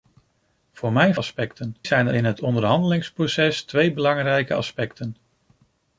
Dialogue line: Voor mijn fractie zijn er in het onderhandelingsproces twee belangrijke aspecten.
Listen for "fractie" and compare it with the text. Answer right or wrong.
wrong